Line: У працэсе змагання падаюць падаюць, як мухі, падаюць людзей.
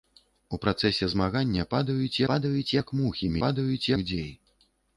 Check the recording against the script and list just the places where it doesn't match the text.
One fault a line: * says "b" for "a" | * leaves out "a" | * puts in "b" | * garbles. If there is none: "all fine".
all fine